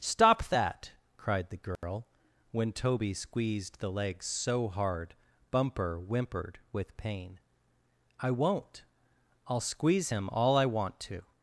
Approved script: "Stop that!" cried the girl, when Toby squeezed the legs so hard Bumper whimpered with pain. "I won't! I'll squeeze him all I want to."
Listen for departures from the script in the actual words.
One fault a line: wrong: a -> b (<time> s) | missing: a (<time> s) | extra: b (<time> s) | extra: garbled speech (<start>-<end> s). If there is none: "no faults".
no faults